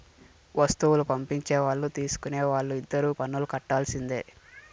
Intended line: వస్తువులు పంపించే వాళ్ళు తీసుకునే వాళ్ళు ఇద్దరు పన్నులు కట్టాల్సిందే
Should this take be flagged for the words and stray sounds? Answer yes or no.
no